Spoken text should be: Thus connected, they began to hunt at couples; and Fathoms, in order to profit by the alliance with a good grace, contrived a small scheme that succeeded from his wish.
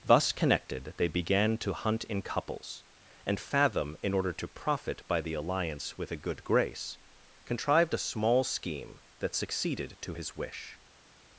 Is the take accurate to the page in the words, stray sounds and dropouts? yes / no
no